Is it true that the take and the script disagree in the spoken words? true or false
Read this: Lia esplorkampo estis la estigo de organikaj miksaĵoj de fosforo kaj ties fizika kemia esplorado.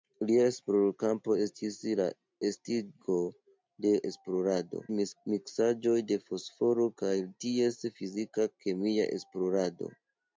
true